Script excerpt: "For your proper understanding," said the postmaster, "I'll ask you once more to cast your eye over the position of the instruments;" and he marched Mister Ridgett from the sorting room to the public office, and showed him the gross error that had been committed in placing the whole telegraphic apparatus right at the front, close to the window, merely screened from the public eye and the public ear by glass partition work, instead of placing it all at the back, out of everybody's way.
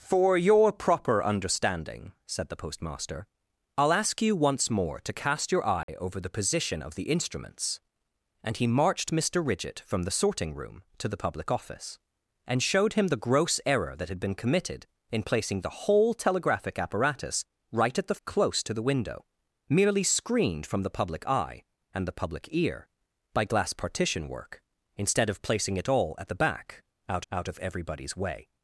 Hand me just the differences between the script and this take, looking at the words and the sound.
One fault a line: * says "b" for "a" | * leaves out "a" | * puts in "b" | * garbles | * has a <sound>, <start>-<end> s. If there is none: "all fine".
* has a dropout, 5.8-5.9 s
* leaves out "front"
* puts in "out"